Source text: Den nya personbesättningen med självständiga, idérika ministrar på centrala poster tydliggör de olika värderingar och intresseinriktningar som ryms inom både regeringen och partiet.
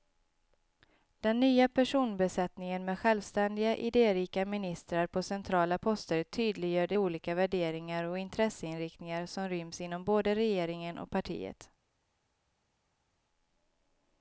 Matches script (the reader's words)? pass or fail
pass